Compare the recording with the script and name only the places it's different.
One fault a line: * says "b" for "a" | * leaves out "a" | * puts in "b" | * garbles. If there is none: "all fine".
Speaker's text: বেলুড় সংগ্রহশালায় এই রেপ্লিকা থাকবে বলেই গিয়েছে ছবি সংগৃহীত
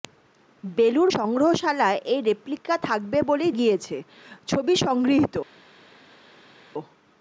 all fine